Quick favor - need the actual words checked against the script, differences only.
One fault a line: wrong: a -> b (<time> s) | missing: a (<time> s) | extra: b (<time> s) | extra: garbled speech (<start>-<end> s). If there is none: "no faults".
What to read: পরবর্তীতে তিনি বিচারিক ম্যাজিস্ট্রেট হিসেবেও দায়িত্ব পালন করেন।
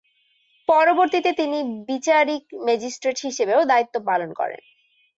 no faults